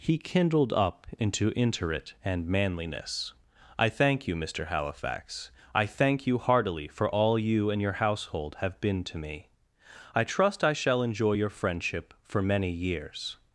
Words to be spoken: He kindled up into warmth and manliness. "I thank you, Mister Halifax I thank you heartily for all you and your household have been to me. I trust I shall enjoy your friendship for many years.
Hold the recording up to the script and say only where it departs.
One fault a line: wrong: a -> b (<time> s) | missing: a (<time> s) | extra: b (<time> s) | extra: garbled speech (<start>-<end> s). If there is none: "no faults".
wrong: warmth -> interit (1.5 s)